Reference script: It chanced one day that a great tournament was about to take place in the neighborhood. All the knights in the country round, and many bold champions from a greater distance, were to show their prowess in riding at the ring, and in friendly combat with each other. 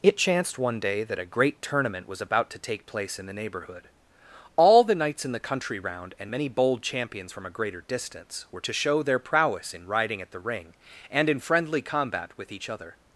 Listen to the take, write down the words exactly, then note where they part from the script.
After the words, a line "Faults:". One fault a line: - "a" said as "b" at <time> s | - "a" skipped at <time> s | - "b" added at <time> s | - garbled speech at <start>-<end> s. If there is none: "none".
It chanced one day that a great tournament was about to take place in the neighborhood. All the knights in the country round, and many bold champions from a greater distance, were to show their prowess in riding at the ring, and in friendly combat with each other.
Faults:
none